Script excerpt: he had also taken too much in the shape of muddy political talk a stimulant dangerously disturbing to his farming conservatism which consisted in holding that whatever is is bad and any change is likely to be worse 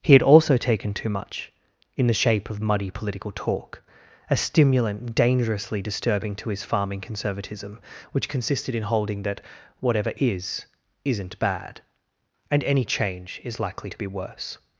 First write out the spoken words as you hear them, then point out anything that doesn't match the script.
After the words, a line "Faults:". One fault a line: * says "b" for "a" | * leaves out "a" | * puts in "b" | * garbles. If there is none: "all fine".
he had also taken too much in the shape of muddy political talk a stimulant dangerously disturbing to his farming conservatism which consisted in holding that whatever is isn't bad and any change is likely to be worse
Faults:
* says "isn't" for "is"